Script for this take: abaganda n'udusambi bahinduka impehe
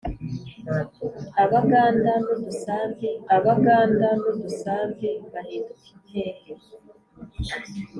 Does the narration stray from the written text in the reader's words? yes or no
yes